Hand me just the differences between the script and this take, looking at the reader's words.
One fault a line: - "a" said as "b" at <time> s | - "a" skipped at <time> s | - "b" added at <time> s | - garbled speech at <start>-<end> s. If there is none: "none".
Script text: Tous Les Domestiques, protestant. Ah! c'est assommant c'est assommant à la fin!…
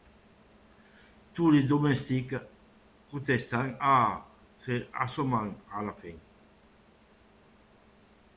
- "c'est assommant" skipped at 5.5 s